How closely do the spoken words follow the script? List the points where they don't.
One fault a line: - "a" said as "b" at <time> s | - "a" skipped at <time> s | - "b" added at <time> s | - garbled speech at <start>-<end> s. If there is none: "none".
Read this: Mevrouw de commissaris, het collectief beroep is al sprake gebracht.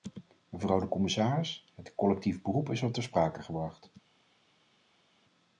- "ter" added at 2.9 s